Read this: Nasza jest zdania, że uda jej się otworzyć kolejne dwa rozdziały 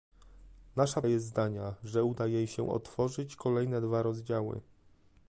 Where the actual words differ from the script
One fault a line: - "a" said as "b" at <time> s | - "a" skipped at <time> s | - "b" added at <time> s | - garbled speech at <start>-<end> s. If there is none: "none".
none